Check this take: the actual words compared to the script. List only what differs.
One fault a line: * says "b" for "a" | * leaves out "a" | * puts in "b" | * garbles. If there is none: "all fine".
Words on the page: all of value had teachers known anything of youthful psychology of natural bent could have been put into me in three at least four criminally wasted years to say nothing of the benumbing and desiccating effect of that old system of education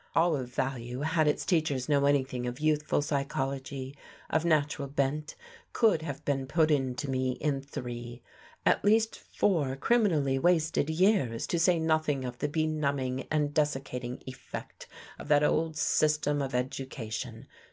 * puts in "its"